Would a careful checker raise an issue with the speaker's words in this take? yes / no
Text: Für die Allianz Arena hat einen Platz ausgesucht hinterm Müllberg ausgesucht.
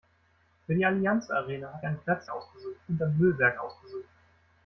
no